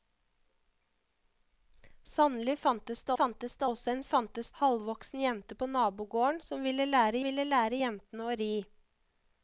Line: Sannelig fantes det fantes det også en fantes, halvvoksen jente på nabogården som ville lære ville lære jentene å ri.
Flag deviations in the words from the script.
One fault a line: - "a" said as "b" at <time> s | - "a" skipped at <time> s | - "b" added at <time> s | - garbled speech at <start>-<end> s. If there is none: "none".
none